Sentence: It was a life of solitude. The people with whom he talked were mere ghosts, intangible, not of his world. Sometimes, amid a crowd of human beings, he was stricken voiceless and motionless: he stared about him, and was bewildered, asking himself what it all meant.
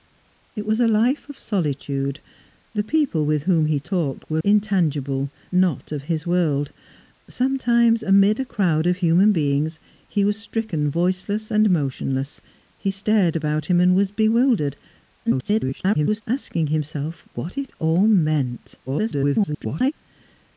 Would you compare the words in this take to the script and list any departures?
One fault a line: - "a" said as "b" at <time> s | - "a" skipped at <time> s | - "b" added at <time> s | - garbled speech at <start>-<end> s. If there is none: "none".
- "mere ghosts" skipped at 4.4 s
- garbled speech at 15.3-16.2 s
- garbled speech at 18.9-19.9 s